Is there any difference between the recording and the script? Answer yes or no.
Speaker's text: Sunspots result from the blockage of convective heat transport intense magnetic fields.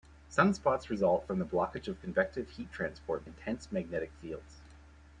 no